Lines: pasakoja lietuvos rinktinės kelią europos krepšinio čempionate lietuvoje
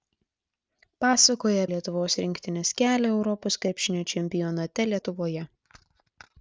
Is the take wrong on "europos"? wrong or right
right